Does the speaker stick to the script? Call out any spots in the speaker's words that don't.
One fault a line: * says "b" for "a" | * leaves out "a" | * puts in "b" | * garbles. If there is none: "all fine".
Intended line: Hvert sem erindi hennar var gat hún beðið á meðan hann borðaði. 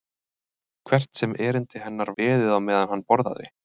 * leaves out "var gat hún"